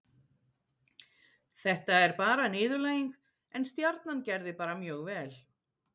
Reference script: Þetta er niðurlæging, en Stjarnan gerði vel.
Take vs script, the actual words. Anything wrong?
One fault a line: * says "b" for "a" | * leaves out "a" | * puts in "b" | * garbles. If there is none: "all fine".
* puts in "bara"
* puts in "bara mjög"